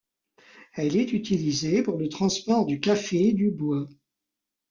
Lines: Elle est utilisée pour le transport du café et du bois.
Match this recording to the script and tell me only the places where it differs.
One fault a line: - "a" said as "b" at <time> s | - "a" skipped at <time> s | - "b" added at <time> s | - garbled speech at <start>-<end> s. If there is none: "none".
none